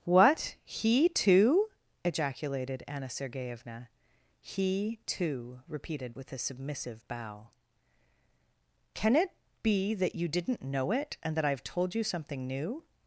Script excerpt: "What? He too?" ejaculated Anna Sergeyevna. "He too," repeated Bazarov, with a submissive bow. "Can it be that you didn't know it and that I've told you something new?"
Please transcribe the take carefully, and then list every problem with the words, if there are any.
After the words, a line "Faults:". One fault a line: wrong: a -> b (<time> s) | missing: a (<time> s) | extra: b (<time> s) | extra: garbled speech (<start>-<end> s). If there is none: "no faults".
"What? He too?" ejaculated Anna Sergeyevna. "He too," repeated With a submissive bow. "Can it be that you didn't know it and that I've told you something new?"
Faults:
missing: Bazarov (6.2 s)